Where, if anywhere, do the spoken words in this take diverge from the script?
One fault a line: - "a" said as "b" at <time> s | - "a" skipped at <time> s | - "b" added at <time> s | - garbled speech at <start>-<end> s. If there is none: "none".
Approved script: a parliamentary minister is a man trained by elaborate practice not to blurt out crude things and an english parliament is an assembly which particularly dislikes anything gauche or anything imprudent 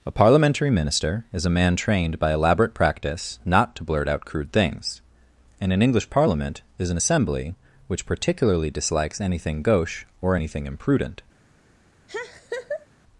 none